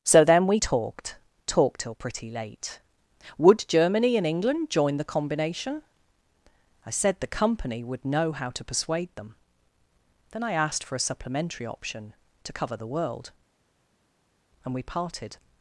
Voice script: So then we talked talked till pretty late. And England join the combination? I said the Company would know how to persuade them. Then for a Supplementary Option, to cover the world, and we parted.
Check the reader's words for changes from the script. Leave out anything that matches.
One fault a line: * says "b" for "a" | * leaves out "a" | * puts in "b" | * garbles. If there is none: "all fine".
* puts in "Would Germany"
* puts in "I asked"